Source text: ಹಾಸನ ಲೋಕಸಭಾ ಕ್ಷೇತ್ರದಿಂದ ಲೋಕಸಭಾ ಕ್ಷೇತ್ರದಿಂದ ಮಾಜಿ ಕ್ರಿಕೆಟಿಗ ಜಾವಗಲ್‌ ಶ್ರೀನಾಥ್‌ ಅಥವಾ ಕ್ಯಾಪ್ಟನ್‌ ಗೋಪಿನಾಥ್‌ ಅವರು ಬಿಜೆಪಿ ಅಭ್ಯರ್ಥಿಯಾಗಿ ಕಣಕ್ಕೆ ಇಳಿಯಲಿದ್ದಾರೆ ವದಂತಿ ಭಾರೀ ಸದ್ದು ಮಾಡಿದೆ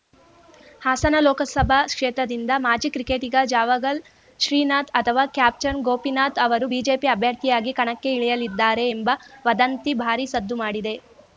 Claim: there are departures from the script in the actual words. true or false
true